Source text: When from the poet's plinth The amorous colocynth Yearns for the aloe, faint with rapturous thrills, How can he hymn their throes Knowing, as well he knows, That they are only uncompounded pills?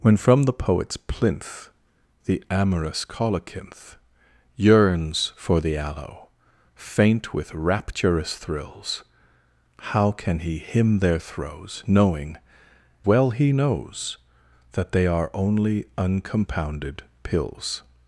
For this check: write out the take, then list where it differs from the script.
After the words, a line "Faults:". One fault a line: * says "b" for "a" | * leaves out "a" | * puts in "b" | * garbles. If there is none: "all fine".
When from the poet's plinth The amorous colocynth Yearns for the aloe, faint with rapturous thrills, How can he hymn their throes Knowing, well he knows, That they are only uncompounded pills?
Faults:
* leaves out "as"